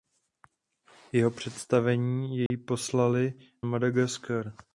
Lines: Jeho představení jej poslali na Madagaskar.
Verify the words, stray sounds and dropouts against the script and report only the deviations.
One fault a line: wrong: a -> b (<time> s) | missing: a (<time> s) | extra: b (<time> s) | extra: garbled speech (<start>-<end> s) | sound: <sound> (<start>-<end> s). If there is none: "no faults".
sound: dropout (2.5-2.5 s)
missing: na (3.3 s)